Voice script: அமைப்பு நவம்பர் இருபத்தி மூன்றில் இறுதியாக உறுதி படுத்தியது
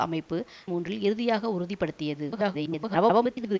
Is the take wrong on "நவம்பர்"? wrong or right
wrong